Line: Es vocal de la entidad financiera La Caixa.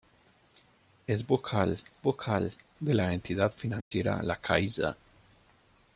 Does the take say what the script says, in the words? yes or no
no